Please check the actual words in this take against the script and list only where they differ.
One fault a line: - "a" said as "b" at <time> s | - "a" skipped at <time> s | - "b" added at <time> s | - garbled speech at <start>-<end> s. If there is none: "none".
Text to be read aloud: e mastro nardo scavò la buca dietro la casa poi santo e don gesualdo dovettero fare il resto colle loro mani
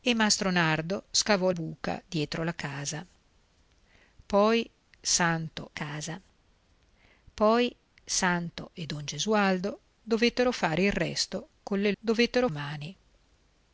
- "la" skipped at 1.5 s
- "casa poi santo" added at 5.7 s
- "loro" said as "dovettero" at 12.0 s